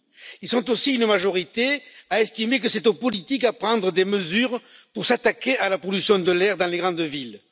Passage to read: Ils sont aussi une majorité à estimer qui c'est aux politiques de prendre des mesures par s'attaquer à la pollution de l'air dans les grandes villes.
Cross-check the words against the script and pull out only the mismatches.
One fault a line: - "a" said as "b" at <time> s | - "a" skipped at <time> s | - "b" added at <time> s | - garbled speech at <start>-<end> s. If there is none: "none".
- "qui" said as "que" at 2.6 s
- "par" said as "pour" at 4.9 s